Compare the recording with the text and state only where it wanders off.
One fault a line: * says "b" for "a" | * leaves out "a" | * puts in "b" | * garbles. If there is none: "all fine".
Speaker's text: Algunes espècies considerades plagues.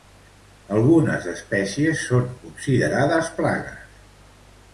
* puts in "són"